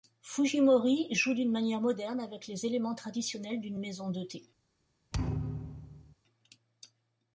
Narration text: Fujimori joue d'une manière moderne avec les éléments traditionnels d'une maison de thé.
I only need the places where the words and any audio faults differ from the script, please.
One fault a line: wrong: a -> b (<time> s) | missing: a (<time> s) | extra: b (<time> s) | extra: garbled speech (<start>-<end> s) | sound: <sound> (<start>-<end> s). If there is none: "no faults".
sound: thud (5.1-6.2 s)